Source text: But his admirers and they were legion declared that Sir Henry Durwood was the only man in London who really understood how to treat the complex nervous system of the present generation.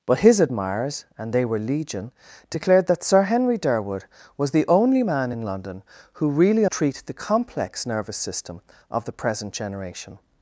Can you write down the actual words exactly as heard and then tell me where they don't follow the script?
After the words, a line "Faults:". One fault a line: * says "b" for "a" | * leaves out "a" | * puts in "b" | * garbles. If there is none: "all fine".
But his admirers and they were legion declared that Sir Henry Durwood was the only man in London who really treat the complex nervous system of the present generation.
Faults:
* leaves out "understood how to"